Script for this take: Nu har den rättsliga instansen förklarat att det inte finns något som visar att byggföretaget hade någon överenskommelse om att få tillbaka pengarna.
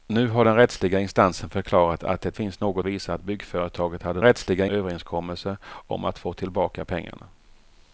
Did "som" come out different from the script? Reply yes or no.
yes